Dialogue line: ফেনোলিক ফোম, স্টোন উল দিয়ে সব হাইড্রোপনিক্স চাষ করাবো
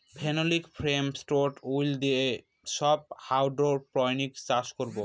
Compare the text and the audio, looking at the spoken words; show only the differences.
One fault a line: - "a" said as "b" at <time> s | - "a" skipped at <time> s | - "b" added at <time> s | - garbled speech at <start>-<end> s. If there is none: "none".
none